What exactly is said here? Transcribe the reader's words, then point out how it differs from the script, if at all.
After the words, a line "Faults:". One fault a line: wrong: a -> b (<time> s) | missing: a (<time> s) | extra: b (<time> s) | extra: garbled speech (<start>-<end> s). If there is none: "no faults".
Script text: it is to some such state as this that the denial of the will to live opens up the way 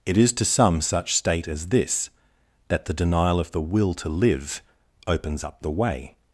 it is to some such state as this that the denial of the will to live opens up the way
Faults:
no faults